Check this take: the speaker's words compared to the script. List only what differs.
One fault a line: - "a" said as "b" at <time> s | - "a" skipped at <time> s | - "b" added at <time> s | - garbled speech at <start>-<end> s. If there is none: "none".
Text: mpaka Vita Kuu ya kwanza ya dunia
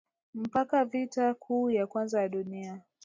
none